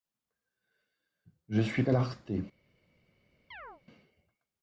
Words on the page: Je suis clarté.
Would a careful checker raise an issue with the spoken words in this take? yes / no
no